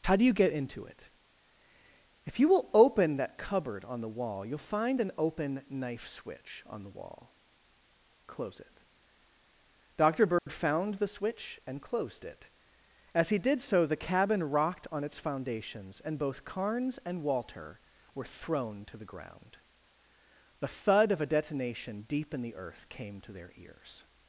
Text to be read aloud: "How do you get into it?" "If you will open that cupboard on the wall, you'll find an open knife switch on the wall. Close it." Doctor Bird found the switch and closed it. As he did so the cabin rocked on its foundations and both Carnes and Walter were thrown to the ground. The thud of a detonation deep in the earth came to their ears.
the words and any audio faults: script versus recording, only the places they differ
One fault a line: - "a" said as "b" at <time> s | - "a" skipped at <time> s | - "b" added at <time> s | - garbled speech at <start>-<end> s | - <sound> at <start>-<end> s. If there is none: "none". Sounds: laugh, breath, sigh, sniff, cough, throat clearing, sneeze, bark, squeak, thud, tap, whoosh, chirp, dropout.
- dropout at 10.4-10.5 s